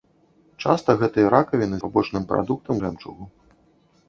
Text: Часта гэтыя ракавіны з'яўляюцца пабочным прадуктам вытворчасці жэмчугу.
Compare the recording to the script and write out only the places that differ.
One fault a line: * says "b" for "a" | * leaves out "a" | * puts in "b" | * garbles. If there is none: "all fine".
* leaves out "з'яўляюцца"
* leaves out "вытворчасці"